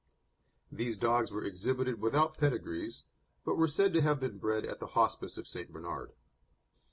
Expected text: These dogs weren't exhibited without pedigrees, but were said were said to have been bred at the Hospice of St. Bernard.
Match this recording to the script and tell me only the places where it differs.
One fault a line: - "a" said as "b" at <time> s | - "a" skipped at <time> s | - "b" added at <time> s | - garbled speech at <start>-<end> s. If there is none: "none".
- "weren't" said as "were" at 1.3 s
- "were said" skipped at 3.9 s